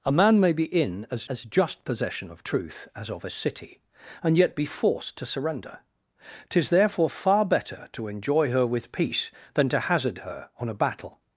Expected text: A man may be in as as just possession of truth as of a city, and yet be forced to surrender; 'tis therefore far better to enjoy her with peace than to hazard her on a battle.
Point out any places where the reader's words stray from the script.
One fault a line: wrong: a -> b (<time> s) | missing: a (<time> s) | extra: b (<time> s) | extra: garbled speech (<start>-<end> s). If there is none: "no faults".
no faults